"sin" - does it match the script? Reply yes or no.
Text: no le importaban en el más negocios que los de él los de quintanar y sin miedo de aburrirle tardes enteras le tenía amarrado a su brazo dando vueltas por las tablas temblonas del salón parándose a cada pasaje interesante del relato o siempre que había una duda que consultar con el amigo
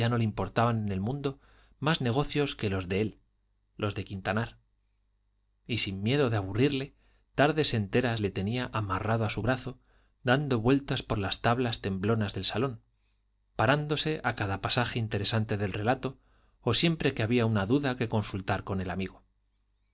yes